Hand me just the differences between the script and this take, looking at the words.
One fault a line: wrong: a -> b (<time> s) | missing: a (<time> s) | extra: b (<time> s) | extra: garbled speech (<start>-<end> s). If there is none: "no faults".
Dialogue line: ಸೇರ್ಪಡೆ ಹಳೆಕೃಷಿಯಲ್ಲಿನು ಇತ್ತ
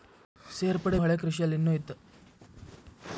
no faults